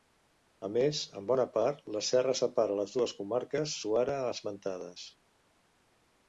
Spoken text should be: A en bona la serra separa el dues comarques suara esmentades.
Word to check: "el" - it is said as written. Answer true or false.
false